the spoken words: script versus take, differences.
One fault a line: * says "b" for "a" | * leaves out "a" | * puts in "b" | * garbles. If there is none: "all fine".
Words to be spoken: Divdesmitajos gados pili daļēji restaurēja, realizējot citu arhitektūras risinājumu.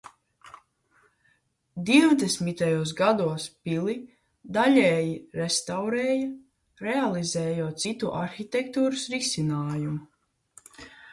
all fine